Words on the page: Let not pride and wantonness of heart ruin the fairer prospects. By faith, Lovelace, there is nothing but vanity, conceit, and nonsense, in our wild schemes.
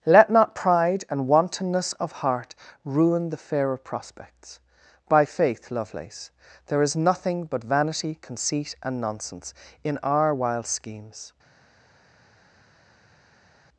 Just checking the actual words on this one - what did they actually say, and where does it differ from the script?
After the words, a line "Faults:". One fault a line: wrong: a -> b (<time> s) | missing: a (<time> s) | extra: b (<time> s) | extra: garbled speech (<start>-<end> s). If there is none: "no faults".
Let not pride and wantonness of heart ruin the fairer prospects. By faith, Lovelace, there is nothing but vanity, conceit, and nonsense, in our wild schemes.
Faults:
no faults